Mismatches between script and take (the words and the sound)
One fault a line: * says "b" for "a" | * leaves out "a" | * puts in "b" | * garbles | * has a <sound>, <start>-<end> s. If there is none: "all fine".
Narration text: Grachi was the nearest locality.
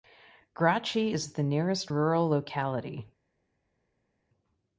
* says "is" for "was"
* puts in "rural"